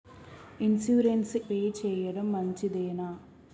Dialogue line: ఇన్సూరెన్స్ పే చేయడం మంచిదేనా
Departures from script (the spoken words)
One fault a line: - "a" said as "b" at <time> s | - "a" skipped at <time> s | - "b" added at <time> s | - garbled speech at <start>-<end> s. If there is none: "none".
none